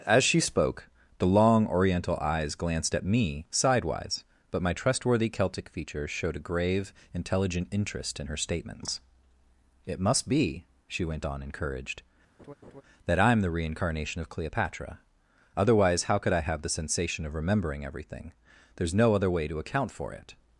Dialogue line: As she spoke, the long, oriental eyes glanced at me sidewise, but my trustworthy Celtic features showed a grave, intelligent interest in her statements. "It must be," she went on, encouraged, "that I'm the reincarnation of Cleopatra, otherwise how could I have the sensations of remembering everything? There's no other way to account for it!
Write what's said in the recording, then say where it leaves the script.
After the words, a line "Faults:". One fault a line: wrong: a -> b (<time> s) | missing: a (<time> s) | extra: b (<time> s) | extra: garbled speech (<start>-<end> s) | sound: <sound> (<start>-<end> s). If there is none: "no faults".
As she spoke, the long, oriental eyes glanced at me sidewise, but my trustworthy Celtic features showed a grave, intelligent interest in her statements. "It must be," she went on, encouraged, "that I'm the reincarnation of Cleopatra, otherwise how could I have the sensation of remembering everything? There's no other way to account for it!
Faults:
sound: laugh (12.4-12.8 s)
wrong: sensations -> sensation (16.7 s)